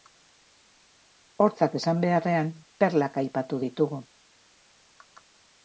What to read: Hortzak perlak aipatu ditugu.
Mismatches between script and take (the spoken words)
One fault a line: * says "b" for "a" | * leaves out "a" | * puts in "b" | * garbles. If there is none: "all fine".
* puts in "esan beharrean"